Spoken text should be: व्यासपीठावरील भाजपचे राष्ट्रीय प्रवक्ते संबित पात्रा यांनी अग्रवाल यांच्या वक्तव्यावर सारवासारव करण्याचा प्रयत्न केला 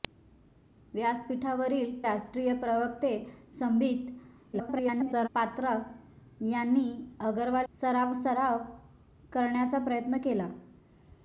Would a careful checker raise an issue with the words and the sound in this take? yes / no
yes